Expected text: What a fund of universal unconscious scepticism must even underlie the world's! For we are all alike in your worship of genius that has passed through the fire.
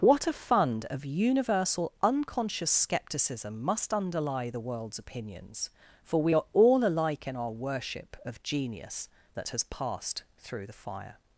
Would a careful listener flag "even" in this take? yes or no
yes